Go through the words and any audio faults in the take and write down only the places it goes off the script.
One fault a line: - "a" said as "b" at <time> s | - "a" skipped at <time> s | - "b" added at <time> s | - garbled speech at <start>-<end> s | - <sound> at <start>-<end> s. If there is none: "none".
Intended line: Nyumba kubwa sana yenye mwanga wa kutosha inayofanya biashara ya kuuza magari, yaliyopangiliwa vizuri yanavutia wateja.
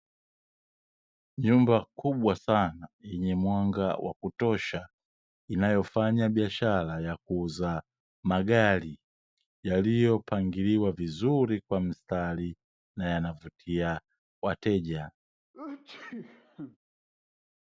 - "kwa mstari na" added at 11.6 s
- sneeze at 15.5-16.8 s